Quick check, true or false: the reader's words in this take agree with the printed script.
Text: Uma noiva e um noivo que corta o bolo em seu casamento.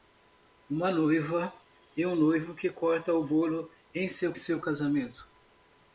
false